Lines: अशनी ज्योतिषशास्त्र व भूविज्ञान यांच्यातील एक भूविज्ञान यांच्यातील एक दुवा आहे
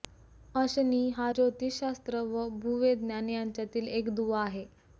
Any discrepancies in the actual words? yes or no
yes